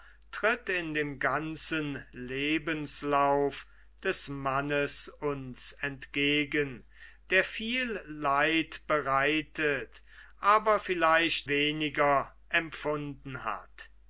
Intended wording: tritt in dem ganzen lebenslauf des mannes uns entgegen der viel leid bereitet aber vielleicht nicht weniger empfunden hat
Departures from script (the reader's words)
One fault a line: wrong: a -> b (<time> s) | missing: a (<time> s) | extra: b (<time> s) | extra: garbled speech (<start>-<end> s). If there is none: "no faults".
missing: nicht (11.5 s)